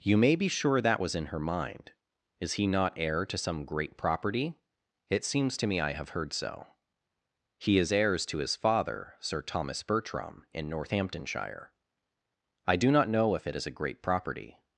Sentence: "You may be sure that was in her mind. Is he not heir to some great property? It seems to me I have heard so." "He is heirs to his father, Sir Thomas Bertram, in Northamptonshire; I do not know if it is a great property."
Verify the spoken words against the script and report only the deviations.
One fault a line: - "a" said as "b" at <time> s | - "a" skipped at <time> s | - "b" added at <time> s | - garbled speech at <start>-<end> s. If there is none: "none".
none